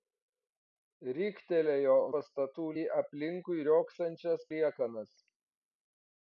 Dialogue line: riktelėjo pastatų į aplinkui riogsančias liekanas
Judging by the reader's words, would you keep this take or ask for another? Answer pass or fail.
pass